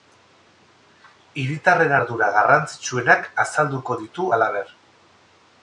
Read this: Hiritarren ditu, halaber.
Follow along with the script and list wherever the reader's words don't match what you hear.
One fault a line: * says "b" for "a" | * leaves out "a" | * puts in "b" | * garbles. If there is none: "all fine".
* puts in "ardura garrantzitsuenak azalduko"